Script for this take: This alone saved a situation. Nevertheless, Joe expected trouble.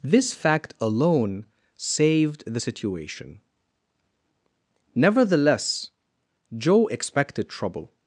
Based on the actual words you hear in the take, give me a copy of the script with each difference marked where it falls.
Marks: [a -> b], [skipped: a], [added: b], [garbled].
This [added: fact] alone saved [a -> the] situation. Nevertheless, Joe expected trouble.